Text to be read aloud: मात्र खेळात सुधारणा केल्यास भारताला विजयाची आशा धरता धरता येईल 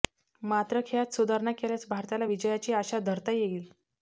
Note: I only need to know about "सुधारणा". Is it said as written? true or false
true